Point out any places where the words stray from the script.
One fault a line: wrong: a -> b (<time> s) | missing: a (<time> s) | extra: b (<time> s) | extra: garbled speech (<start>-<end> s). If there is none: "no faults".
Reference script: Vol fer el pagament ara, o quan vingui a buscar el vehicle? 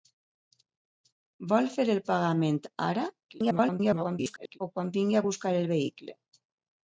extra: garbled speech (3.3-4.6 s)